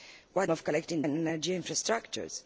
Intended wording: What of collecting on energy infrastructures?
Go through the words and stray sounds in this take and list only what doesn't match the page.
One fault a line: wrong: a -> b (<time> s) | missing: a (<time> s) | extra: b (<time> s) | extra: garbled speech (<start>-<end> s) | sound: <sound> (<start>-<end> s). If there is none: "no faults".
no faults